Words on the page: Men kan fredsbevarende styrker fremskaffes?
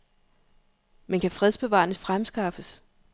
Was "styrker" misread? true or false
true